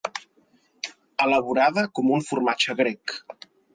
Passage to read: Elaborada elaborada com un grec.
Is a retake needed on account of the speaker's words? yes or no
yes